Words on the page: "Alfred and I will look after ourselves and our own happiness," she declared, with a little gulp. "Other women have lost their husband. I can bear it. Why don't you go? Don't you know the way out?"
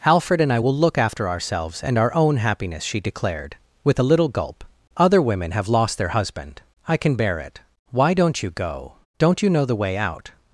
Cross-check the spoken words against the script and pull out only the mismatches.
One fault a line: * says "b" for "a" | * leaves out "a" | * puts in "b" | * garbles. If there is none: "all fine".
all fine